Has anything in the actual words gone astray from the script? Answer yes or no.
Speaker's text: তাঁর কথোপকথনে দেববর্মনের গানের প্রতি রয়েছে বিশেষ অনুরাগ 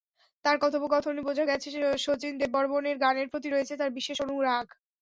yes